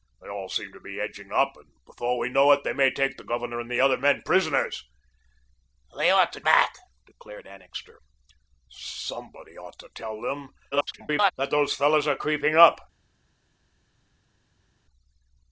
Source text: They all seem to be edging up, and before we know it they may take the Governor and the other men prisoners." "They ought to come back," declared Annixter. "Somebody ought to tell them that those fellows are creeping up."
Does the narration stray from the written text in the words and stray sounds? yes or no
yes